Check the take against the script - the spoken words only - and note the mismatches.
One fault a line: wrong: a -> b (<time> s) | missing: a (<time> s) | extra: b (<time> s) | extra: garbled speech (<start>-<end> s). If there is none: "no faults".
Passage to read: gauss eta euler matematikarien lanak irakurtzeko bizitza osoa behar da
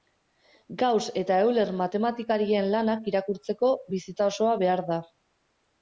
no faults